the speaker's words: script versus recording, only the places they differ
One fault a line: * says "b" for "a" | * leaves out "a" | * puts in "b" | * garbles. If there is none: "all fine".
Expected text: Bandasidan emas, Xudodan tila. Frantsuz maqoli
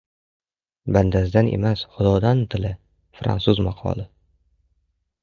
all fine